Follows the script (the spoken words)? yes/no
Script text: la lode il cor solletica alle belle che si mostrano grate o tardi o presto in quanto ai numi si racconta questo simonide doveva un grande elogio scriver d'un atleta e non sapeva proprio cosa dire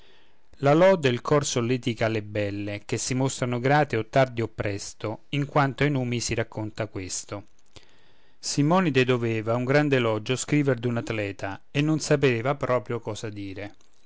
yes